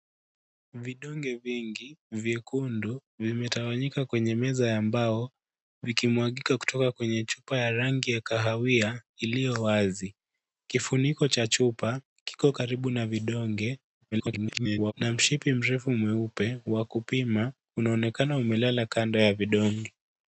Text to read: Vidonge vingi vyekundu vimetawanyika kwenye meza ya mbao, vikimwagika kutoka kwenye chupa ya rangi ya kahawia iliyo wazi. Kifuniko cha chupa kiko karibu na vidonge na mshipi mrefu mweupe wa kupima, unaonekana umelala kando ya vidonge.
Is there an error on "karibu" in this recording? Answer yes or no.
no